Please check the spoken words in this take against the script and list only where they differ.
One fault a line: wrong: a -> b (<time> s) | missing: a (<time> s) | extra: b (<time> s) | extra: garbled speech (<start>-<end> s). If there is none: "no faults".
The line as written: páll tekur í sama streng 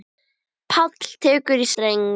missing: sama (1.7 s)